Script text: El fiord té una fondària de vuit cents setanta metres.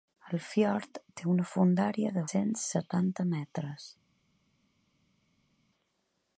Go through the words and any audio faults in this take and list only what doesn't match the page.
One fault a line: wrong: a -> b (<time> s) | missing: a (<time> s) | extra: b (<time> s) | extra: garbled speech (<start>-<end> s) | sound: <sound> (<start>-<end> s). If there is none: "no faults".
missing: vuit (2.2 s)